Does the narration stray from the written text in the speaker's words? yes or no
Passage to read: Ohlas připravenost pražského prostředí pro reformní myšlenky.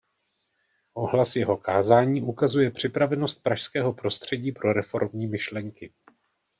yes